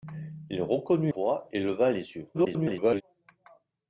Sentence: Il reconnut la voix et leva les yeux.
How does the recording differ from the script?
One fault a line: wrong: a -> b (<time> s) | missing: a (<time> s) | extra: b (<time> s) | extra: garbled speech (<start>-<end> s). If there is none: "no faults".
missing: la (1.1 s)
extra: garbled speech (2.3-3.0 s)